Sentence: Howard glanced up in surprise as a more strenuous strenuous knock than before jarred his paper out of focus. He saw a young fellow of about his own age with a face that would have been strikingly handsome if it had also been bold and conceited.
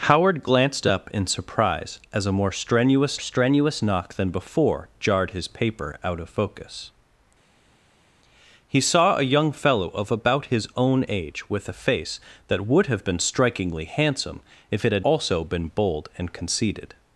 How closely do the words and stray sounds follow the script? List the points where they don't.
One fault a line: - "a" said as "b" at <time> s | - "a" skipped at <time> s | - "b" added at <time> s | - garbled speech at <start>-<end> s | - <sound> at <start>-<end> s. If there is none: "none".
none